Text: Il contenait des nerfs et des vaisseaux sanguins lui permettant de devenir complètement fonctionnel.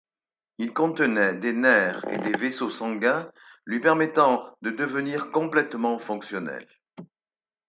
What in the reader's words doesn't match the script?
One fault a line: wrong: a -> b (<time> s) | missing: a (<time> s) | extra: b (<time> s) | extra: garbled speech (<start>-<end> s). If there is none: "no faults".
no faults